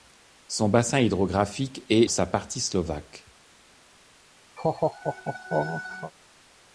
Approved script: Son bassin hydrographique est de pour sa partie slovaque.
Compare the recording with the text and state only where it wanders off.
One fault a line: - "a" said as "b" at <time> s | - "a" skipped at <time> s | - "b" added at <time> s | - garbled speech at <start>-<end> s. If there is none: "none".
- "de pour" skipped at 2.1 s